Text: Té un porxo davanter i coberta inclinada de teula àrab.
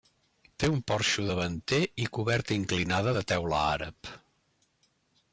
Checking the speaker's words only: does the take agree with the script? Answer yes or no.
yes